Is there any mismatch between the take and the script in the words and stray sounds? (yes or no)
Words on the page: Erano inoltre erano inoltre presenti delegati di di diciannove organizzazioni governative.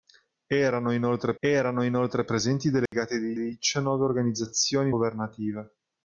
yes